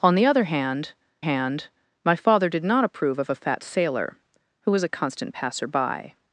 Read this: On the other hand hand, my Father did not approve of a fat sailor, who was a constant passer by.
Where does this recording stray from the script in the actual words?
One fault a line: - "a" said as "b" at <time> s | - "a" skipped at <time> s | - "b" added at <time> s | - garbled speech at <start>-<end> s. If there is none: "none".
none